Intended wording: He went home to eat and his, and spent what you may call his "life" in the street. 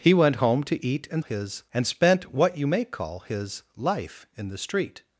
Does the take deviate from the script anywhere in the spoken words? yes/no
no